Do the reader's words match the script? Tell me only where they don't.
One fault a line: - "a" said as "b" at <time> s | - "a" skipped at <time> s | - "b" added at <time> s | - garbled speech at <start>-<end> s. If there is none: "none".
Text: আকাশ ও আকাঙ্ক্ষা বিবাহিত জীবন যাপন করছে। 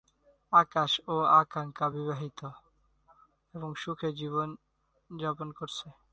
- "এবং সুখে" added at 3.5 s